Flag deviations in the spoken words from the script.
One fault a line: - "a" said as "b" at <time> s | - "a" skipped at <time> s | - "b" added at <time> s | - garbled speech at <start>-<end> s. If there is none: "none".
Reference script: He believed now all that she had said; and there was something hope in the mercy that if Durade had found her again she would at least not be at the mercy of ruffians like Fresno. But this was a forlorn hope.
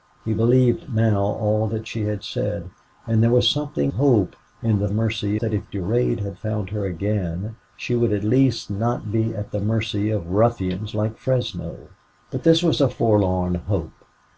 none